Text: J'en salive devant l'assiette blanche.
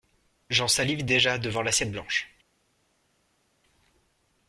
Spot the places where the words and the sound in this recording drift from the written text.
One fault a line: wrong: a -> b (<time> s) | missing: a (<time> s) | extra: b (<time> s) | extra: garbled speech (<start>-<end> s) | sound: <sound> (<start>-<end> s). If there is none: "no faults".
extra: déjà (1.0 s)